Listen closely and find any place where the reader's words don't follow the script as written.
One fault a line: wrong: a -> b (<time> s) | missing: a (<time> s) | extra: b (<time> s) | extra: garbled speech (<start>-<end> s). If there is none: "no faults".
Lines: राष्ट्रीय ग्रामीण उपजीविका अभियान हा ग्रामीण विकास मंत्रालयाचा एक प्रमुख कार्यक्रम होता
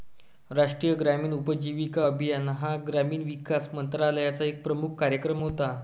no faults